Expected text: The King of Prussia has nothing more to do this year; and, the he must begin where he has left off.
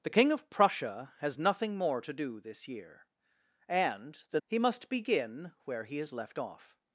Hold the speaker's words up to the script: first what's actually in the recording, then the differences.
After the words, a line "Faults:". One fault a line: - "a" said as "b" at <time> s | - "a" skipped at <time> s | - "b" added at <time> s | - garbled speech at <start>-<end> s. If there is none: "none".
The King of Prussia has nothing more to do this year; and, the he must begin where he has left off.
Faults:
none